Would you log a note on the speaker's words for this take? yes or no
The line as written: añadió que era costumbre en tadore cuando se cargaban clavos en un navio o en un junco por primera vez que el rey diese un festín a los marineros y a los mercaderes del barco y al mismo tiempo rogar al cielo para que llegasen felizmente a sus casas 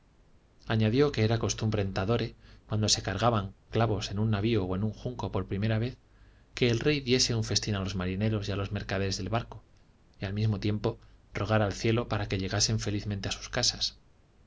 no